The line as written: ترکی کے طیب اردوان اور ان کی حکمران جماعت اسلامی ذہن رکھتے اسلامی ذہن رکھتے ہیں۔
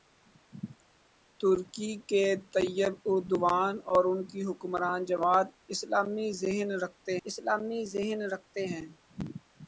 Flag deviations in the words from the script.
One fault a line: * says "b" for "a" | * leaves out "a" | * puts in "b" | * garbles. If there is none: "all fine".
all fine